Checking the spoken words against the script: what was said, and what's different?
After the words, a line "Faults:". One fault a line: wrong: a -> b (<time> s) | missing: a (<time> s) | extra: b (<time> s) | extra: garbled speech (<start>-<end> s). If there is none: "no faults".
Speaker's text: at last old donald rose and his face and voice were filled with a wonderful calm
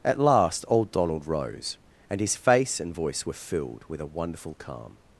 at last old donald rose and his face and voice were filled with a wonderful calm
Faults:
no faults